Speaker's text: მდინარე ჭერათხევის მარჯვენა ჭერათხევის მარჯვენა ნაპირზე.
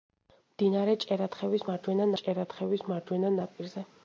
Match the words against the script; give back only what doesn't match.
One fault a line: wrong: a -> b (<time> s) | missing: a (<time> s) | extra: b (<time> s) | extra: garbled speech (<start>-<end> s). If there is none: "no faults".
no faults